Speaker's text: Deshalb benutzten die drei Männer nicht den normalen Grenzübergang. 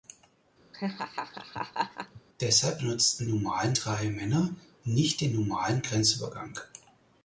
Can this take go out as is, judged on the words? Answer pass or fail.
fail